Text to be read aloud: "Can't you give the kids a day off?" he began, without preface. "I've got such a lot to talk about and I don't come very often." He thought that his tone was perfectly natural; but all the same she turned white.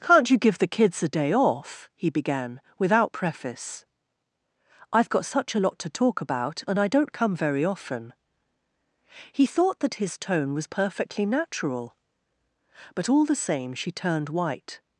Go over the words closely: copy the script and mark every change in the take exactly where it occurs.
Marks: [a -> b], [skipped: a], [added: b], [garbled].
"Can't you give the kids a day off?" he began, without preface. "I've got such a lot to talk about and I don't come very often." He thought that his tone was perfectly natural; but all the same she turned white.